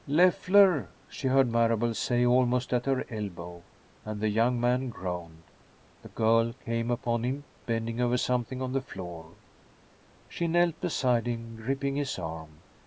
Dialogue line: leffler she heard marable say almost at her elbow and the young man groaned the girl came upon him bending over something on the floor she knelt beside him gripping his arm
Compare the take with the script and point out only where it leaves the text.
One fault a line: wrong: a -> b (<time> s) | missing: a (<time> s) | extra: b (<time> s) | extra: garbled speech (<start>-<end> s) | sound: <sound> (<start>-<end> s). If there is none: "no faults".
no faults